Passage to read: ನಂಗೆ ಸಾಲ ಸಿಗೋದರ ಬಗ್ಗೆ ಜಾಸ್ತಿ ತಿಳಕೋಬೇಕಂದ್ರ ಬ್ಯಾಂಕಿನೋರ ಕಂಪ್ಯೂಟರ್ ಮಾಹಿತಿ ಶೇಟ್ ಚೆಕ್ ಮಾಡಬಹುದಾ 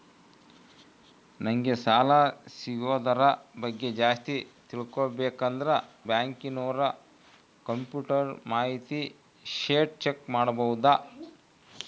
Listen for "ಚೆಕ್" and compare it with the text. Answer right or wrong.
right